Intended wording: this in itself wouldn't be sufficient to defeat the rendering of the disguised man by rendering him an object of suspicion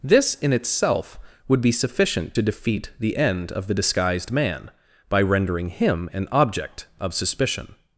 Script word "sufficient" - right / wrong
right